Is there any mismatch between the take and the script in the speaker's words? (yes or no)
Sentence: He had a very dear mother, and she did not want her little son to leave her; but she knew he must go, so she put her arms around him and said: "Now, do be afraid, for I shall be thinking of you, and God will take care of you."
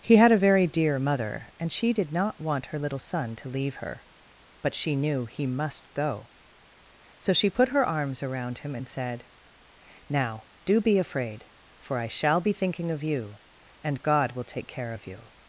no